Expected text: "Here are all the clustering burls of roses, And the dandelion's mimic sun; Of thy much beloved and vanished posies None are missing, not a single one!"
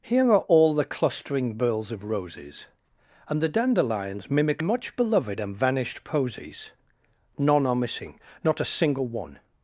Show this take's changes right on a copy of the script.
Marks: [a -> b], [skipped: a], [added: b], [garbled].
"Here are all the clustering burls of roses, And the dandelion's mimic [skipped: sun; Of thy] much beloved and vanished posies None are missing, not a single one!"